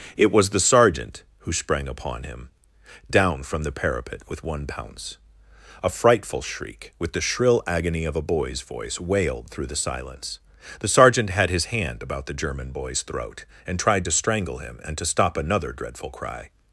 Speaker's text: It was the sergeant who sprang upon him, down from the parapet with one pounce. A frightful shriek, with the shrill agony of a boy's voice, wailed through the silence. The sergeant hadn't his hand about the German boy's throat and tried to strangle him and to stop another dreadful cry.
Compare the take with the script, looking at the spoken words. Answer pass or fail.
fail